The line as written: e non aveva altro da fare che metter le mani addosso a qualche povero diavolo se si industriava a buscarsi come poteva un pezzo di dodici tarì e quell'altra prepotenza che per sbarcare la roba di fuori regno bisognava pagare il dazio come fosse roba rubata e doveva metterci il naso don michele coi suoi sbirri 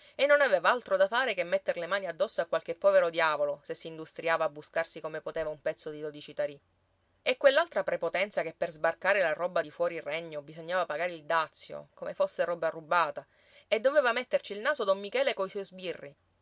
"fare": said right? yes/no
yes